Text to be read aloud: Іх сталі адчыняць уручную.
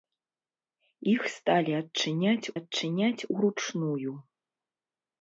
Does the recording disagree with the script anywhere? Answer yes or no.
yes